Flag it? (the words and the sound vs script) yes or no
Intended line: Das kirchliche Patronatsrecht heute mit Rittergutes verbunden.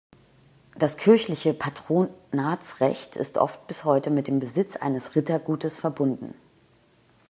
yes